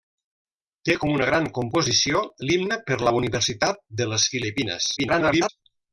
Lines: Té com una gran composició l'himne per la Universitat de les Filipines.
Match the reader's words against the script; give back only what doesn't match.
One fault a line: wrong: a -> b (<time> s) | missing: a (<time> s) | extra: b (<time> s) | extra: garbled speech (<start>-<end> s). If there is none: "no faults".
extra: garbled speech (5.0-5.5 s)